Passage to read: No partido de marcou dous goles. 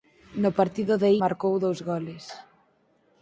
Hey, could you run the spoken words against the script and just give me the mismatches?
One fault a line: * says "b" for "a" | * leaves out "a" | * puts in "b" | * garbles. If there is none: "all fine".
all fine